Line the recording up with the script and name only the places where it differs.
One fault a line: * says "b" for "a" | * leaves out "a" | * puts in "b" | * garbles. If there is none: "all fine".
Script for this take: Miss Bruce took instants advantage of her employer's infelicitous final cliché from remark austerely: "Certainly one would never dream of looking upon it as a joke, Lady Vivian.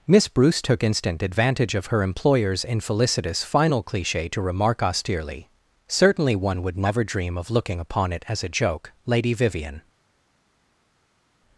* says "instant" for "instants"
* says "to" for "from"